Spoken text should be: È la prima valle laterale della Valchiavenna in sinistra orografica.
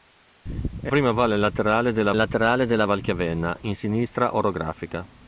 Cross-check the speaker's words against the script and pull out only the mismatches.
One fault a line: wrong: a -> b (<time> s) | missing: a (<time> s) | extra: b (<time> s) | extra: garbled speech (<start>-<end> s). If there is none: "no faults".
missing: la (0.9 s)
extra: laterale della (2.1 s)